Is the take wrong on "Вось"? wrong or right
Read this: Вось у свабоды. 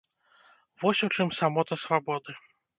right